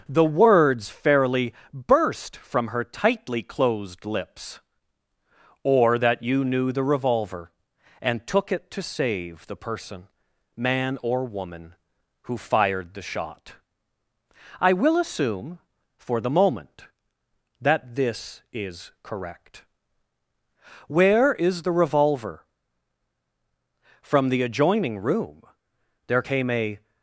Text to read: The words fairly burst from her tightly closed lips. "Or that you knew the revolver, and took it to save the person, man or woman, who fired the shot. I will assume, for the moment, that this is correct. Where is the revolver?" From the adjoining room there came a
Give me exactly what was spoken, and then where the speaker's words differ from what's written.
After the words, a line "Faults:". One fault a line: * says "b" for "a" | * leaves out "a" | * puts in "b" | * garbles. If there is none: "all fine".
The words fairly burst from her tightly closed lips. "Or that you knew the revolver, and took it to save the person, man or woman, who fired the shot. I will assume, for the moment, that this is correct. Where is the revolver?" From the adjoining room there came a
Faults:
all fine